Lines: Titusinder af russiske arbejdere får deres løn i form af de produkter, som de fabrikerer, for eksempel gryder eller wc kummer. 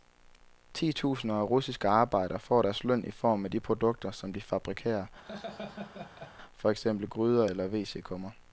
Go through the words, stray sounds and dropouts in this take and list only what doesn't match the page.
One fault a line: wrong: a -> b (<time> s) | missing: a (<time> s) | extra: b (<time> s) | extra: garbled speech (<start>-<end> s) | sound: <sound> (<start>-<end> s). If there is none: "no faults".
sound: laugh (5.2-6.3 s)